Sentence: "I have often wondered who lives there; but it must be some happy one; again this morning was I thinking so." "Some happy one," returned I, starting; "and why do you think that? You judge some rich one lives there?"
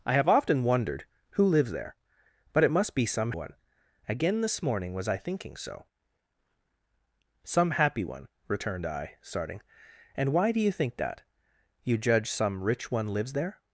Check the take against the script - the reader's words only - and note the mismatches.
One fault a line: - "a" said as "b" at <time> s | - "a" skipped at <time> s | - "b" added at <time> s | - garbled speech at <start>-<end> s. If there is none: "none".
- "happy" skipped at 3.3 s